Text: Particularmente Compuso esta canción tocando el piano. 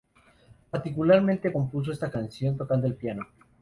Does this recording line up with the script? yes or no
yes